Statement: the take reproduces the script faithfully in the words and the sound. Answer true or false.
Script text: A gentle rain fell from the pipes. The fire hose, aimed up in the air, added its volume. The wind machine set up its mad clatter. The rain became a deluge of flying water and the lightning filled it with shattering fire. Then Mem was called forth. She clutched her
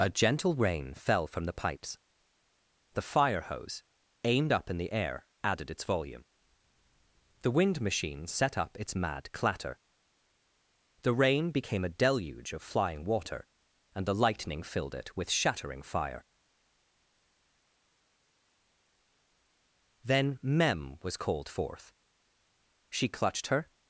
true